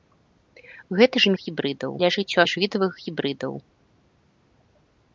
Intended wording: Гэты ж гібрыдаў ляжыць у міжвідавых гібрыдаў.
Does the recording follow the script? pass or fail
pass